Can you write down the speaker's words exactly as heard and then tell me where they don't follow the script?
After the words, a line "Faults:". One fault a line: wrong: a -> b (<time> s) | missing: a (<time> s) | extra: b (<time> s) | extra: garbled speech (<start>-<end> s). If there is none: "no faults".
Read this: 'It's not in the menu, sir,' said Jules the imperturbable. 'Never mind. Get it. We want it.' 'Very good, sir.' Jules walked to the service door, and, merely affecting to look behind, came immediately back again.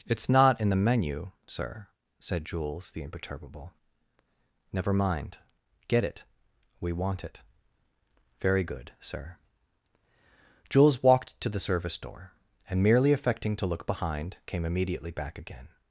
'It's not in the menu, sir,' said Jules the imperturbable. 'Never mind. Get it. We want it.' 'Very good, sir.' Jules walked to the service door, and, merely affecting to look behind, came immediately back again.
Faults:
no faults